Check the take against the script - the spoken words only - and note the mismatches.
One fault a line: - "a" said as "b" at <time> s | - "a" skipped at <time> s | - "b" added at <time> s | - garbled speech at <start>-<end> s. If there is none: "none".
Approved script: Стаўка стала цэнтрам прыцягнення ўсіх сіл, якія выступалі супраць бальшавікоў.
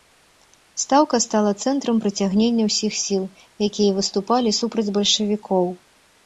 none